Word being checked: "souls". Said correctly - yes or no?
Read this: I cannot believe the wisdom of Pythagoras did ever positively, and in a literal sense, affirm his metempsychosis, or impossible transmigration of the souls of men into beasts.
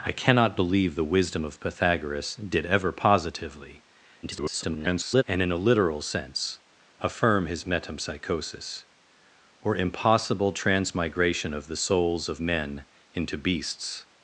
yes